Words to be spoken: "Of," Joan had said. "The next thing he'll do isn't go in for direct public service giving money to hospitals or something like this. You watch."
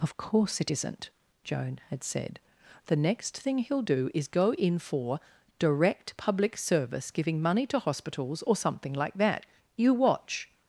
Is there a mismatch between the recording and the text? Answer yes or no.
yes